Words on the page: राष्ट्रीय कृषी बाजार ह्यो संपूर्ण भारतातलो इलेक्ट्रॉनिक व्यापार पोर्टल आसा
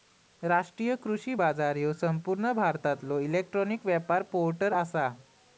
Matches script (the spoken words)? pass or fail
pass